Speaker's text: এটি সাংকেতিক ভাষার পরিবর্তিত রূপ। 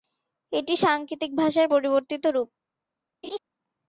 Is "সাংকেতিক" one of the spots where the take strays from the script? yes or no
no